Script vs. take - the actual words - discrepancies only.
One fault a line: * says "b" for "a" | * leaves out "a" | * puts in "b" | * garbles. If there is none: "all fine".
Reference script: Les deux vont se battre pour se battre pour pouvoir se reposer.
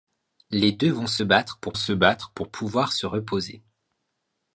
all fine